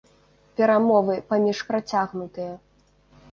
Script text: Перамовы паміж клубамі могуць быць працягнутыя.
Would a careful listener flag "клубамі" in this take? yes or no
yes